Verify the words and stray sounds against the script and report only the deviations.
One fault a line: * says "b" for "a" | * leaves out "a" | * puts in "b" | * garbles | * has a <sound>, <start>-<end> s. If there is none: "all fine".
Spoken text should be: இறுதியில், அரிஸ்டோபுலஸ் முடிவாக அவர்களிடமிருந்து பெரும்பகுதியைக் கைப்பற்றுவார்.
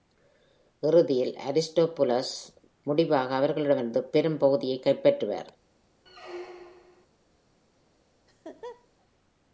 * has a squeak, 6.1-7.1 s
* has a laugh, 8.3-8.9 s